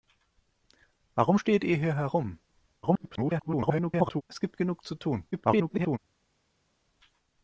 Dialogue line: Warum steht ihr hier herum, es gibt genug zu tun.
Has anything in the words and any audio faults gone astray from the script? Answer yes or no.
yes